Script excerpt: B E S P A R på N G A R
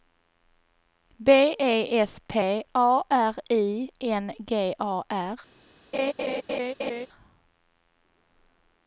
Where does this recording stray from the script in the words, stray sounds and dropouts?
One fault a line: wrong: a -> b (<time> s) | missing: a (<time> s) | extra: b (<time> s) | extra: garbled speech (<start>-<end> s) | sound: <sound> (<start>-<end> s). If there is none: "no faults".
wrong: på -> I (3.5 s)
sound: laugh (5.9-7.1 s)